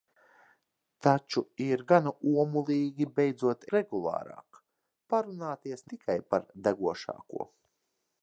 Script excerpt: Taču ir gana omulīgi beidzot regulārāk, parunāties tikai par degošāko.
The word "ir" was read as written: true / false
true